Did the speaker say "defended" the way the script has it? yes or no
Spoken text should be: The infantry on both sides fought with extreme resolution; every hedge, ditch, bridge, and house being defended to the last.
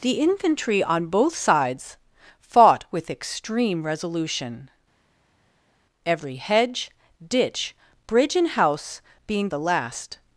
no